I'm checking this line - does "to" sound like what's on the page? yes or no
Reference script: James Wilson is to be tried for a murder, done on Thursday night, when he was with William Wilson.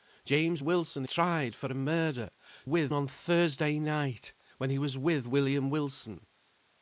no